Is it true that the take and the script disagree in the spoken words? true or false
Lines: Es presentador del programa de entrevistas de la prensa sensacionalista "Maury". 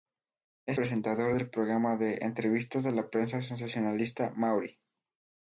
false